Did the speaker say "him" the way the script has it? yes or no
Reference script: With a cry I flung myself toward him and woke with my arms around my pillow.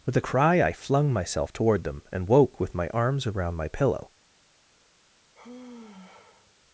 no